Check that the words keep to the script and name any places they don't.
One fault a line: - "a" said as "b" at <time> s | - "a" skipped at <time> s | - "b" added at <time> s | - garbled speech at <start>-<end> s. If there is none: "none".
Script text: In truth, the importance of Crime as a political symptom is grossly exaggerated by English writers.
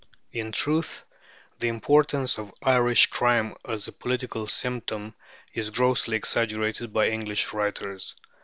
- "Irish" added at 2.6 s